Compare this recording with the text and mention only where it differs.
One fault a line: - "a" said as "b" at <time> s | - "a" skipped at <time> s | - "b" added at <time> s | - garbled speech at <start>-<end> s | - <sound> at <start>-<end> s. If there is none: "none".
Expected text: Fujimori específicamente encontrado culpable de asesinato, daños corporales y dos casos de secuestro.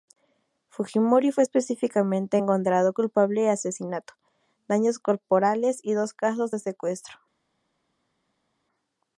- "fue" added at 1.3 s